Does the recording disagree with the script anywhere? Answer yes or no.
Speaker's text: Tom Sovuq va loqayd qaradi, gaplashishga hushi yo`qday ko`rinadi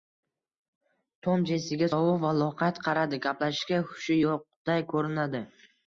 yes